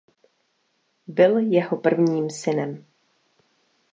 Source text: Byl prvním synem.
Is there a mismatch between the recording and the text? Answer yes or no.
yes